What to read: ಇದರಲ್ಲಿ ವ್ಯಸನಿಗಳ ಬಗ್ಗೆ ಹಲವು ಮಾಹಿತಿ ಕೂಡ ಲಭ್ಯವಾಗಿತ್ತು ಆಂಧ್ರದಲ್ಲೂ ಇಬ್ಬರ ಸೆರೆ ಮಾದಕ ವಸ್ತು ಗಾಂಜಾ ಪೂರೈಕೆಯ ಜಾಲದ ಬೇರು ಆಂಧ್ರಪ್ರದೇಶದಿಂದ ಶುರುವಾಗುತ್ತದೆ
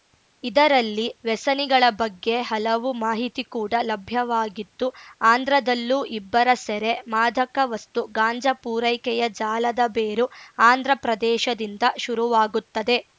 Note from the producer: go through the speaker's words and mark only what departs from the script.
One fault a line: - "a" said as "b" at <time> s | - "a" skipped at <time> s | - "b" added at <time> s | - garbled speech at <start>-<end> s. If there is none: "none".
none